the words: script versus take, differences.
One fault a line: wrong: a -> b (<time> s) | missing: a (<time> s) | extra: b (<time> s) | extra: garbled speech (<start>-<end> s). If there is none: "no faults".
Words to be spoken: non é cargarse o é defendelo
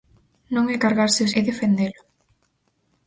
no faults